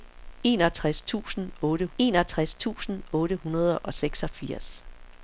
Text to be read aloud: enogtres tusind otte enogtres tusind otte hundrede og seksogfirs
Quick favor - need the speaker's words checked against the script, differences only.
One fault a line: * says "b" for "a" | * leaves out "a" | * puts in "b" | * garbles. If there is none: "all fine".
all fine